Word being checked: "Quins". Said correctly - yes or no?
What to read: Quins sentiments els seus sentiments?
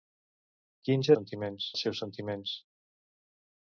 yes